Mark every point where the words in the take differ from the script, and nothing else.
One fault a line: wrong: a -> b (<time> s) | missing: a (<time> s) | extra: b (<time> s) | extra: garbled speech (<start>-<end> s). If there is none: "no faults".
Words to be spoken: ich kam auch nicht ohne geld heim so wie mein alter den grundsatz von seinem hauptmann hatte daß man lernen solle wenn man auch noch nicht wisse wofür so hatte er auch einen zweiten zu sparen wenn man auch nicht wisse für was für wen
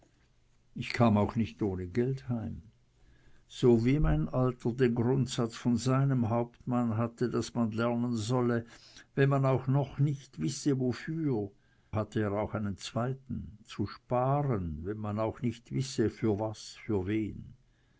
missing: so (11.5 s)